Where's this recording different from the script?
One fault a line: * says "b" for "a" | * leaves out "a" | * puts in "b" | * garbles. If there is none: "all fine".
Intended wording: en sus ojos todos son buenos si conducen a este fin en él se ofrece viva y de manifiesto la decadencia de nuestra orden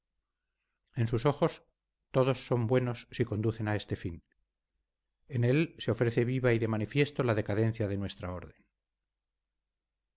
all fine